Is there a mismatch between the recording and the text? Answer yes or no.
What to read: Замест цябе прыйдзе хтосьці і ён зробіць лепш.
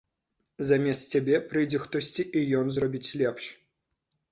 no